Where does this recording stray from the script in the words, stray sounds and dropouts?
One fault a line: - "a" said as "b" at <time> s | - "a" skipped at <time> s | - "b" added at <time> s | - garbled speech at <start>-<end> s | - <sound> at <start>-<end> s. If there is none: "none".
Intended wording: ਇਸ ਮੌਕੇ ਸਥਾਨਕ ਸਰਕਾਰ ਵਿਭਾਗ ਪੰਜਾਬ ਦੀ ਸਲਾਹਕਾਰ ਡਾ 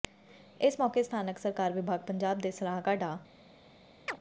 - "ਦੀ" said as "ਦੇ" at 2.4 s
- chirp at 4.1-4.2 s